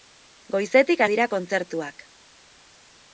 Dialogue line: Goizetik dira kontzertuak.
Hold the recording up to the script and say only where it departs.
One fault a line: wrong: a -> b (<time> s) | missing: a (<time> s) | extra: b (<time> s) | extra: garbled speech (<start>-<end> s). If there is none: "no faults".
no faults